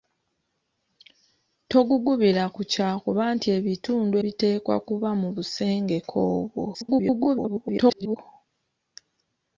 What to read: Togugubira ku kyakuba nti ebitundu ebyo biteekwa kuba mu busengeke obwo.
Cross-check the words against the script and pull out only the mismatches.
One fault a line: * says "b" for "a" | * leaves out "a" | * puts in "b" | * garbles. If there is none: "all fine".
* leaves out "ebyo"
* garbles